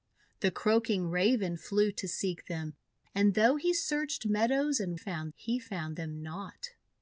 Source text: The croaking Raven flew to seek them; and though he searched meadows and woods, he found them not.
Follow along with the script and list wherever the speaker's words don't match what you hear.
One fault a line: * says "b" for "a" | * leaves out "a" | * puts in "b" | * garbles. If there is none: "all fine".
* says "found" for "woods"